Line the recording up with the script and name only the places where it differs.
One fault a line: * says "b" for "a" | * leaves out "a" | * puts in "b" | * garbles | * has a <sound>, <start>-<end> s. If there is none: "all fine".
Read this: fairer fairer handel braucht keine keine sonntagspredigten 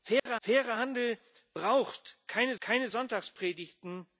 * has a dropout, 0.2-0.3 s